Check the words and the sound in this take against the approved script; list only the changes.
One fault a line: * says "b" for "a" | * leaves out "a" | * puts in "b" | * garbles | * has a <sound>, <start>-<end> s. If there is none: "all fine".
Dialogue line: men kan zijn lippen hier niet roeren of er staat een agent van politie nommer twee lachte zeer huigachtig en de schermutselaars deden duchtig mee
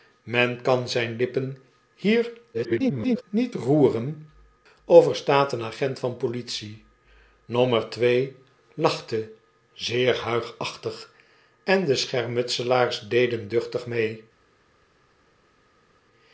* garbles